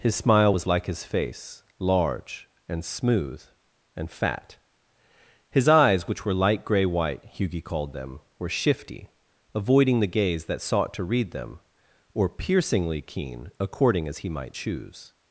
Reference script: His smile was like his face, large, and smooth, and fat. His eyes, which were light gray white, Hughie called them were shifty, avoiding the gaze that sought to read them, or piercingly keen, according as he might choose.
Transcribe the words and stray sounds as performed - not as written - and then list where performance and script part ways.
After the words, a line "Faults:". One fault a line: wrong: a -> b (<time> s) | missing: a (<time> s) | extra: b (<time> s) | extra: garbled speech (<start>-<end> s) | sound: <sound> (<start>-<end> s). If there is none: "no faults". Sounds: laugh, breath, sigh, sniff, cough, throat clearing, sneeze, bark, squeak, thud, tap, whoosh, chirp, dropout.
His smile was like his face, large, and smooth, and fat. His eyes, which were light gray white, Hughie called them were shifty, avoiding the gaze that sought to read them, or piercingly keen, according as he might choose.
Faults:
no faults